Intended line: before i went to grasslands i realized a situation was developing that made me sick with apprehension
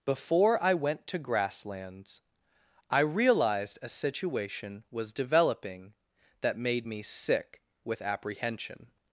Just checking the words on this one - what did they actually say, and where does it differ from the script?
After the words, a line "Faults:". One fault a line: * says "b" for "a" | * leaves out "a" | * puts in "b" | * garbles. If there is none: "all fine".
before i went to grasslands i realized a situation was developing that made me sick with apprehension
Faults:
all fine